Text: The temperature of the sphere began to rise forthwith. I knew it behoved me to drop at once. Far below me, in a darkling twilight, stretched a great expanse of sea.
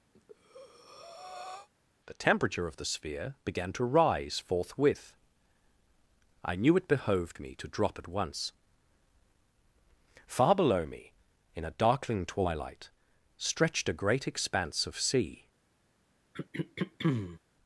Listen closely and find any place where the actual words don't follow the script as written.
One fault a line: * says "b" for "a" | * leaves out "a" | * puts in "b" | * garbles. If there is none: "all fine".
all fine